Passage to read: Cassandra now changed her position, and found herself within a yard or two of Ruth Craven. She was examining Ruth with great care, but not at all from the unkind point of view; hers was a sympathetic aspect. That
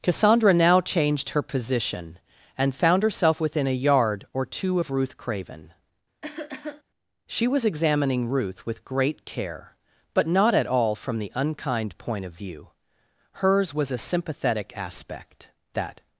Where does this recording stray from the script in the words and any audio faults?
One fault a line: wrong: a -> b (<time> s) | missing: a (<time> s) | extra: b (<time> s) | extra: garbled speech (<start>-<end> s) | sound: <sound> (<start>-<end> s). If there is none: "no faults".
sound: cough (6.2-6.8 s)